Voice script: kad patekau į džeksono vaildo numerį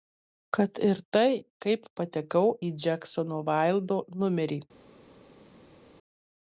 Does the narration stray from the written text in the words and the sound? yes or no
yes